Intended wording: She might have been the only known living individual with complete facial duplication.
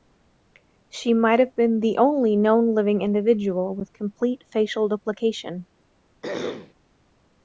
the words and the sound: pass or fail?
fail